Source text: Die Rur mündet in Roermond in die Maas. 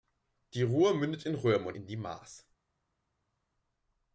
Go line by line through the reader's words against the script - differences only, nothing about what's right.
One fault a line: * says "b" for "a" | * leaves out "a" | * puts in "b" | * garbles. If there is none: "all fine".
all fine